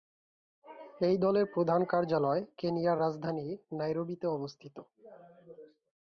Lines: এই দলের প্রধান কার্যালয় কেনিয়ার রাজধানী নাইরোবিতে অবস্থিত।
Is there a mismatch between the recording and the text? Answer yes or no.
no